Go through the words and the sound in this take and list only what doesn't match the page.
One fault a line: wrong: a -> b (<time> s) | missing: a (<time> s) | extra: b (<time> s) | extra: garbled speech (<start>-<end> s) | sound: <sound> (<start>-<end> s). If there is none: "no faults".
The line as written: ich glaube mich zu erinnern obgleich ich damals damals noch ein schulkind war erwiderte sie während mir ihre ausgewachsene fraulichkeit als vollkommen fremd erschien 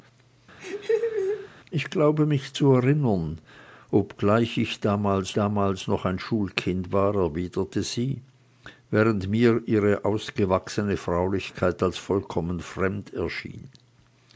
sound: laugh (0.6-1.5 s)